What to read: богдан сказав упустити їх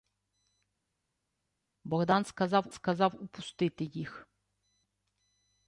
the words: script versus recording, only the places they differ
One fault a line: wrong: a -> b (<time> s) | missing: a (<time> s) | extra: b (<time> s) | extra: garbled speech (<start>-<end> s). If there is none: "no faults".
extra: сказав (2.7 s)